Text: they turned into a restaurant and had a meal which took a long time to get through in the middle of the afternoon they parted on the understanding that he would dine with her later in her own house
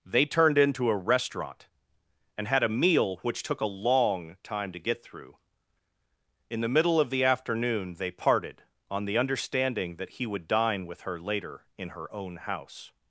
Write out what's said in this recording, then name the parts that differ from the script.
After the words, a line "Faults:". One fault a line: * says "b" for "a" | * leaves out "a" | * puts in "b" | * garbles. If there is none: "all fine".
they turned into a restaurant and had a meal which took a long time to get through in the middle of the afternoon they parted on the understanding that he would dine with her later in her own house
Faults:
all fine